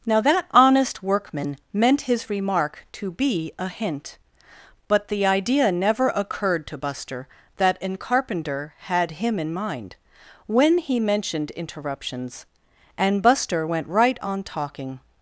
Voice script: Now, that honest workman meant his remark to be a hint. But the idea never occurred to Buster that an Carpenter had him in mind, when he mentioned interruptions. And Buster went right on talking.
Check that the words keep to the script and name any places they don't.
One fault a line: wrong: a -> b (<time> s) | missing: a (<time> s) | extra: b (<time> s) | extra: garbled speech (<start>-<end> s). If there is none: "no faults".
no faults